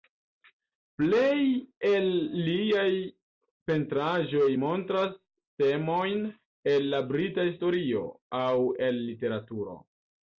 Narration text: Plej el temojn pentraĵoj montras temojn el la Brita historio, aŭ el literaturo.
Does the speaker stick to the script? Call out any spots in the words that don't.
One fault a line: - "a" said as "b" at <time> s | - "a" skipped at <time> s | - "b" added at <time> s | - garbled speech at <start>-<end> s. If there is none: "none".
- "temojn" said as "liaj" at 2.5 s